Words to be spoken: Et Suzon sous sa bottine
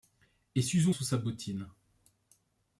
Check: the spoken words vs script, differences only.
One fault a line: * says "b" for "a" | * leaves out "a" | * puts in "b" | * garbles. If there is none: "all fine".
all fine